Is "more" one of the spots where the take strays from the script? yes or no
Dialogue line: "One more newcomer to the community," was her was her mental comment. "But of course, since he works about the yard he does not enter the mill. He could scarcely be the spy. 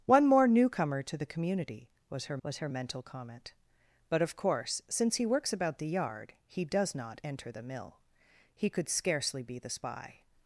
no